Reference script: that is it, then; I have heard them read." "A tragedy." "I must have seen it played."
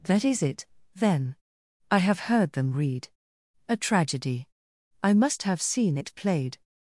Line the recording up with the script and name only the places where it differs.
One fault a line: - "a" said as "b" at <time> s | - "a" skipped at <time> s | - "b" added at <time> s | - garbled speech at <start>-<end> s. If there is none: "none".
none